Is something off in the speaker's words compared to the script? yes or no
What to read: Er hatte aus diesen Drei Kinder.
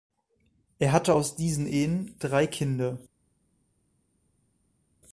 yes